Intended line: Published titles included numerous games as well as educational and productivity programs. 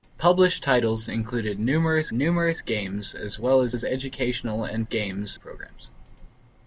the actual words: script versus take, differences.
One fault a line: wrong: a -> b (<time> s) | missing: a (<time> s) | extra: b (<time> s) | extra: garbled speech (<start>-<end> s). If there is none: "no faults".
extra: numerous (2.1 s)
extra: as (3.7 s)
wrong: productivity -> games (4.8 s)